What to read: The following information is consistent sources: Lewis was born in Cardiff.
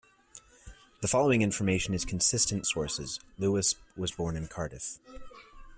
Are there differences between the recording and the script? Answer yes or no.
no